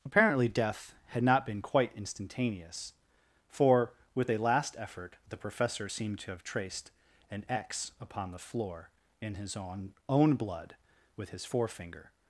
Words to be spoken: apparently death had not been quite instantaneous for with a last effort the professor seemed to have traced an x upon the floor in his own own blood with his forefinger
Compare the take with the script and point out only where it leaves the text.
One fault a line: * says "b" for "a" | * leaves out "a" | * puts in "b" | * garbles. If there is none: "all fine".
all fine